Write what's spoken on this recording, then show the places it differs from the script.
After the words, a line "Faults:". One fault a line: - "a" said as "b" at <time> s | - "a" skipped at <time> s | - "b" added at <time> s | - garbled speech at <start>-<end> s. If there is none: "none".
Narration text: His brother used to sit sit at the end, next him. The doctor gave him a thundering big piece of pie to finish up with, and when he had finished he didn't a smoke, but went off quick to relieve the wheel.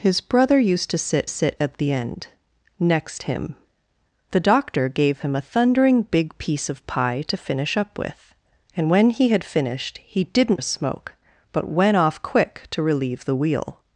His brother used to sit sit at the end, next him. The doctor gave him a thundering big piece of pie to finish up with, and when he had finished he didn't a smoke, but went off quick to relieve the wheel.
Faults:
none